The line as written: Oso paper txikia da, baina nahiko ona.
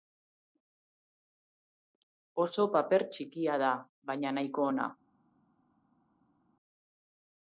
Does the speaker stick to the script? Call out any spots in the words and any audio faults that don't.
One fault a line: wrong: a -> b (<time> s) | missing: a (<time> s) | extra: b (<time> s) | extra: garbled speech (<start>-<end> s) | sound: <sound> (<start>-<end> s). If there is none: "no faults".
no faults